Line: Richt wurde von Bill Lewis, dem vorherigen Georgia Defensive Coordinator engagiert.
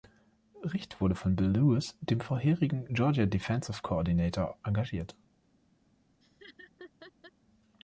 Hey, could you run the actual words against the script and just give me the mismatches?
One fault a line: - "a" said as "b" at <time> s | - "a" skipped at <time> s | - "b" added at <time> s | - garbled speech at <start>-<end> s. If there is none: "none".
none